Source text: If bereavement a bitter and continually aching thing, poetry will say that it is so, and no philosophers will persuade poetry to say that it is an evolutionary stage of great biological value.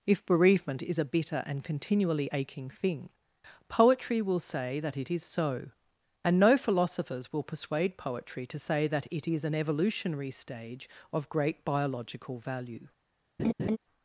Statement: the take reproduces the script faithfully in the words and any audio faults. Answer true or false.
false